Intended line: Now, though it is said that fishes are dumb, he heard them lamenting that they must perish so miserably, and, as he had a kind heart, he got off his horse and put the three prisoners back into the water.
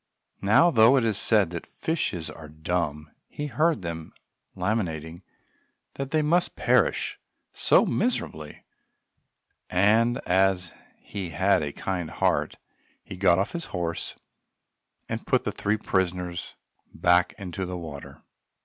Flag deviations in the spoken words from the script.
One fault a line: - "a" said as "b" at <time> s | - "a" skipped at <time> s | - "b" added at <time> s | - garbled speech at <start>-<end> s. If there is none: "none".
none